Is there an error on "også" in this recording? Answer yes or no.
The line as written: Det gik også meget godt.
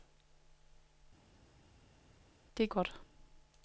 yes